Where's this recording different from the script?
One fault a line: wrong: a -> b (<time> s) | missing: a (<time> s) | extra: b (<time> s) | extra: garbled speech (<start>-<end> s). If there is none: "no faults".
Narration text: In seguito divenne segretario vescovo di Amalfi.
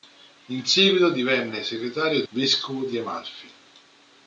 no faults